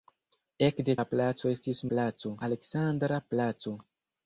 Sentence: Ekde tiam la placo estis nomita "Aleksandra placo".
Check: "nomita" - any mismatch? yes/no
yes